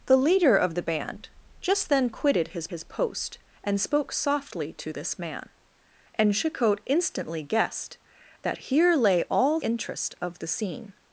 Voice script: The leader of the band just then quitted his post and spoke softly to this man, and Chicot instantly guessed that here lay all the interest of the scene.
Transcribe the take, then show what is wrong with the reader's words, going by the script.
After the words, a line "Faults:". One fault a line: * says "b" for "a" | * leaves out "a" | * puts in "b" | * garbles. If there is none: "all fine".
The leader of the band just then quitted his his post and spoke softly to this man, and Chicot instantly guessed that here lay all interest of the scene.
Faults:
* puts in "his"
* leaves out "the"